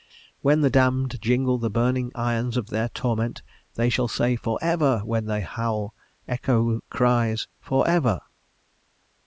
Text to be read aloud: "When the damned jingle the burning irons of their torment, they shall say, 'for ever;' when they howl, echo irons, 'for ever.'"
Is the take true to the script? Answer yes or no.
no